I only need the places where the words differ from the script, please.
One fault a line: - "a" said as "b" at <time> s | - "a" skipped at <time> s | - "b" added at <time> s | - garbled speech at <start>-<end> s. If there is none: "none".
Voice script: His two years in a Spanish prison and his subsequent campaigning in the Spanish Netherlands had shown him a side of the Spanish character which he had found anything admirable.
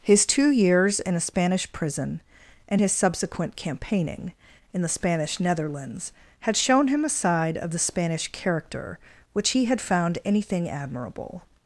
none